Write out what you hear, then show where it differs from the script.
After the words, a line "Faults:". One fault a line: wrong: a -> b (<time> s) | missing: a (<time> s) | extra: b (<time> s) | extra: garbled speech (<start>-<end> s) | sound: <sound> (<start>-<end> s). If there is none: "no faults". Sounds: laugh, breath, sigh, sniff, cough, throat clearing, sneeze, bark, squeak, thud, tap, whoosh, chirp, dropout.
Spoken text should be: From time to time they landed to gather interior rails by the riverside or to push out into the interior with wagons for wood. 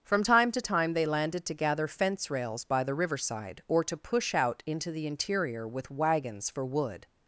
From time to time they landed to gather fence rails by the riverside or to push out into the interior with wagons for wood.
Faults:
wrong: interior -> fence (1.9 s)